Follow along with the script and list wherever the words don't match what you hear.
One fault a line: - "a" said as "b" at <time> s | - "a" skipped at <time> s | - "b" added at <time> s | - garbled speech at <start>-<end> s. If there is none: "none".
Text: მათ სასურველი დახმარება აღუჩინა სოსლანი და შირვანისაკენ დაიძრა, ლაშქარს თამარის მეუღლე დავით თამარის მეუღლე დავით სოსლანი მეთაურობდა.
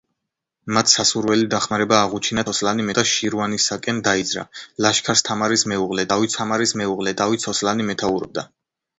none